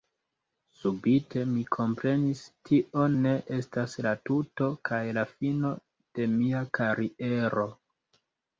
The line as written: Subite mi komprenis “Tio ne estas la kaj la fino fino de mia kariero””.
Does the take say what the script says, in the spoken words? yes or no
no